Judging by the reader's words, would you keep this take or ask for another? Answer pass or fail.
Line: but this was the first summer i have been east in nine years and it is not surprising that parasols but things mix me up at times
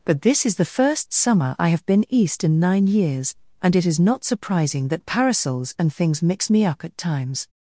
fail